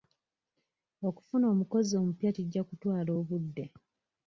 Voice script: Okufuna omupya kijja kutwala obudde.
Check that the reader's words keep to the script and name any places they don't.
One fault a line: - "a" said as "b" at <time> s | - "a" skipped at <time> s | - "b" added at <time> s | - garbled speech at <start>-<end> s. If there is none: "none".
- "omukozi" added at 1.5 s